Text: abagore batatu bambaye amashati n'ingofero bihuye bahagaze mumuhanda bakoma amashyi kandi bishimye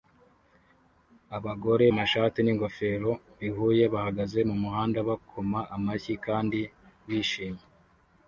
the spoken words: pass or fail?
fail